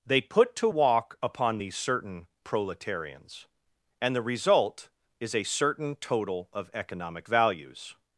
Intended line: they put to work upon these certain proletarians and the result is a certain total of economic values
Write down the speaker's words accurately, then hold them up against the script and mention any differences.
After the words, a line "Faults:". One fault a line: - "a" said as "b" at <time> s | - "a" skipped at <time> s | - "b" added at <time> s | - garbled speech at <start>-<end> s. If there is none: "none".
they put to walk upon these certain proletarians and the result is a certain total of economic values
Faults:
- "work" said as "walk" at 0.7 s